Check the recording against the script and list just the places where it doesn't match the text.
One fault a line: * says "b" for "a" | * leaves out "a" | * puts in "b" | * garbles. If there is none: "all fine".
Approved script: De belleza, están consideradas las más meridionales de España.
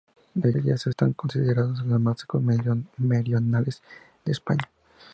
all fine